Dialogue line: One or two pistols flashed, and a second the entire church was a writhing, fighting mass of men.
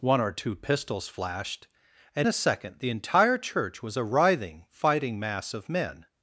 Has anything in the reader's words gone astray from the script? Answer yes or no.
no